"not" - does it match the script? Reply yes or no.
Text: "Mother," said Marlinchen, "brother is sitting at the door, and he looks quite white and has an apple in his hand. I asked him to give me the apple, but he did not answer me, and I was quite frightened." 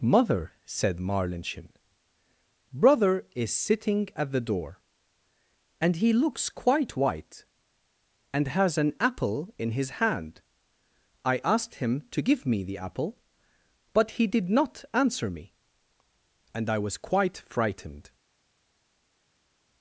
yes